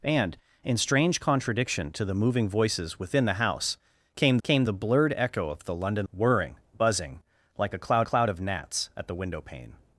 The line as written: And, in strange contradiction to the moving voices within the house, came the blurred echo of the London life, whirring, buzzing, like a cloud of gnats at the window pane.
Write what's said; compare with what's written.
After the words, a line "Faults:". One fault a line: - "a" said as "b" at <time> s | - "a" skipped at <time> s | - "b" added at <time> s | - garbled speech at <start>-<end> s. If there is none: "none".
And, in strange contradiction to the moving voices within the house, came came the blurred echo of the London whirring, buzzing, like a cloud cloud of gnats at the window pane.
Faults:
- "came" added at 4.4 s
- "life" skipped at 6.1 s
- "cloud" added at 8.0 s